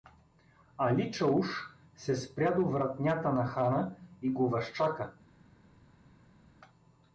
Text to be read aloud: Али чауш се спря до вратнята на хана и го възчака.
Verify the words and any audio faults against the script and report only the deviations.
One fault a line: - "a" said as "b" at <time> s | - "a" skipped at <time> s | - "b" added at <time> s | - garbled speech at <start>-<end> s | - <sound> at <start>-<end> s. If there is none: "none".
none